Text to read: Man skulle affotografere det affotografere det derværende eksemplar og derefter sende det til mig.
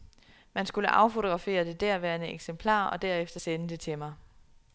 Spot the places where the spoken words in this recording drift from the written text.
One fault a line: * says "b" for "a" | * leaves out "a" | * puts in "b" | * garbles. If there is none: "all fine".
* leaves out "affotografere det"